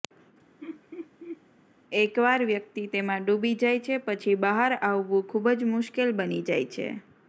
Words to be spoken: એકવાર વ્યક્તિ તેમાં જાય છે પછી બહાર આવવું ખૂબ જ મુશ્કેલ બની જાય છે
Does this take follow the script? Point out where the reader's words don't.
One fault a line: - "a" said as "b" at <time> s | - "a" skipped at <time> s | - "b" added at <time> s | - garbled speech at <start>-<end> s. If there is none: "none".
- "ડૂબી" added at 3.3 s